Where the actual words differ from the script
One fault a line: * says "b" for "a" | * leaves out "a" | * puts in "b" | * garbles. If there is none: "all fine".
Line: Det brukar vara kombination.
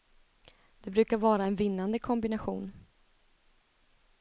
* puts in "en vinnande"